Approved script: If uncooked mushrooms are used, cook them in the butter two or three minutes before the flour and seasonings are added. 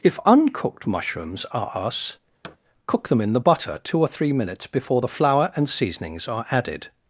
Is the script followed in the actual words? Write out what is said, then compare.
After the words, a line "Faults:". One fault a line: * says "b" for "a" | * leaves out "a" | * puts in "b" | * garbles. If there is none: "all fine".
If uncooked mushrooms are us, cook them in the butter two or three minutes before the flour and seasonings are added.
Faults:
* says "us" for "used"